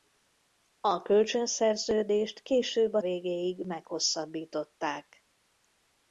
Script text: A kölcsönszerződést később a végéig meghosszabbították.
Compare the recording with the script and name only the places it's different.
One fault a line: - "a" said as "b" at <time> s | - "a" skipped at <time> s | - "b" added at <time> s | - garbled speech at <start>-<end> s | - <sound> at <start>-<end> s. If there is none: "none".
none